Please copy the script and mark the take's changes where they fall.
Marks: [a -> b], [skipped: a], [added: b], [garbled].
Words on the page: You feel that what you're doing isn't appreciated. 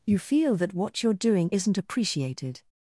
You feel that what you're doing isn't appreciated.